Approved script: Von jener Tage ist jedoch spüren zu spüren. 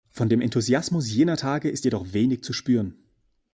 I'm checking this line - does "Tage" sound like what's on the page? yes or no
yes